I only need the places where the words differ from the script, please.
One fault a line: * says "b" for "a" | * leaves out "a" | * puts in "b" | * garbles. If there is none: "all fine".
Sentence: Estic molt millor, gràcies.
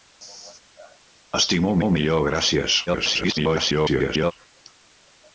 * puts in "molt"
* garbles